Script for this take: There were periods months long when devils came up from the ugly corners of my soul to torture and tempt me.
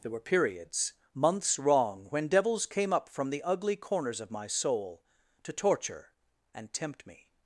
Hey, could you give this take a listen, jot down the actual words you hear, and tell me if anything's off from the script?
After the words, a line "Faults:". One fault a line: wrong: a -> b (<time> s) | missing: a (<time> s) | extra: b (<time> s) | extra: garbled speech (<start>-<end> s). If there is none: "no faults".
There were periods months wrong when devils came up from the ugly corners of my soul to torture and tempt me.
Faults:
wrong: long -> wrong (1.6 s)